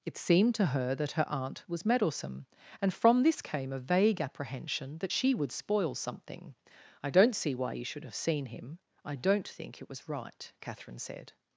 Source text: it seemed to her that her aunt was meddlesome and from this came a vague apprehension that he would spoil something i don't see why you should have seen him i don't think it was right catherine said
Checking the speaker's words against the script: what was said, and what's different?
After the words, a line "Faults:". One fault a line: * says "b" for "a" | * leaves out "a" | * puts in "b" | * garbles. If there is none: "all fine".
it seemed to her that her aunt was meddlesome and from this came a vague apprehension that she would spoil something i don't see why you should have seen him i don't think it was right catherine said
Faults:
* says "she" for "he"